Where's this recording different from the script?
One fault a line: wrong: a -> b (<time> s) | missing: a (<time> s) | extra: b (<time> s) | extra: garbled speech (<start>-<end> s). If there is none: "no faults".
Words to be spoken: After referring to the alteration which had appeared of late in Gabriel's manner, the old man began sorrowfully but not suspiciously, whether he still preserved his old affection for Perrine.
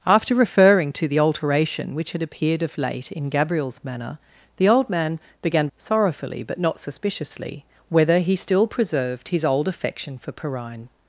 no faults